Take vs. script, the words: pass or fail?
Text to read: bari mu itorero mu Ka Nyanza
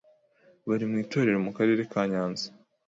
fail